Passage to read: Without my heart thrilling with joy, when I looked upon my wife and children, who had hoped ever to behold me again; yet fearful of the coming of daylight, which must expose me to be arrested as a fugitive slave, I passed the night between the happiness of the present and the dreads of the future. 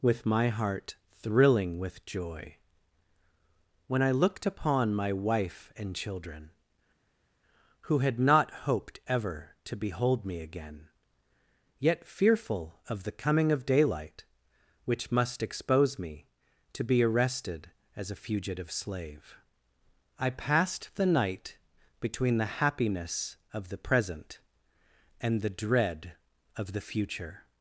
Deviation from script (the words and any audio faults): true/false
true